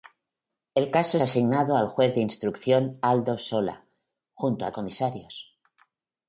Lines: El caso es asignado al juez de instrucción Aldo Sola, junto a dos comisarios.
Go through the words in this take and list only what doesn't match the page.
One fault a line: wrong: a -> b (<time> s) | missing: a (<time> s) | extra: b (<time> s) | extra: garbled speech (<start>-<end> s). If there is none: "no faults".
missing: es (1.2 s)
missing: dos (4.7 s)